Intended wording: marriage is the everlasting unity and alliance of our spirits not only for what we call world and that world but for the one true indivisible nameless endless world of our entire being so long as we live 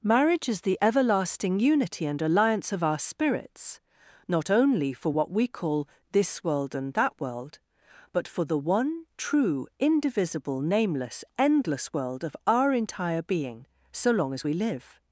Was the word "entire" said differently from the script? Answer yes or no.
no